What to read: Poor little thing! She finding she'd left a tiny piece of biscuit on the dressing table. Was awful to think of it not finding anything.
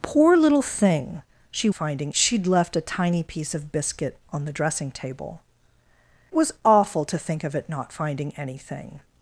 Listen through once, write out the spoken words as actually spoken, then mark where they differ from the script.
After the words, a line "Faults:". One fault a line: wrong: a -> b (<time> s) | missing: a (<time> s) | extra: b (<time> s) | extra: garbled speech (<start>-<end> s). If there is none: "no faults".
Poor little thing! She finding she'd left a tiny piece of biscuit on the dressing table. Was awful to think of it not finding anything.
Faults:
no faults